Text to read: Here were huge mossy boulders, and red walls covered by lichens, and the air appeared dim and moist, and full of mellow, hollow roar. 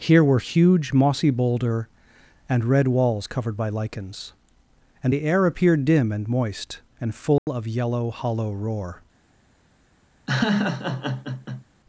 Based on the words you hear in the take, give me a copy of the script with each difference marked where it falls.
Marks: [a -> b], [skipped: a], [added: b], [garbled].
Here were huge mossy [boulders, -> boulder] and red walls covered by lichens, and the air appeared dim and moist, and full of [mellow, -> yellow] hollow roar.